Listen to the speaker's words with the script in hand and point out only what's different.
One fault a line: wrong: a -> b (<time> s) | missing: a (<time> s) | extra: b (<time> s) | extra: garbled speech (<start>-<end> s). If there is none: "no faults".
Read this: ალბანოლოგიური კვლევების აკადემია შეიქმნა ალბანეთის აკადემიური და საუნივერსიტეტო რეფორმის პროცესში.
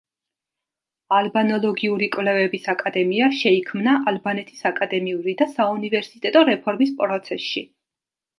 no faults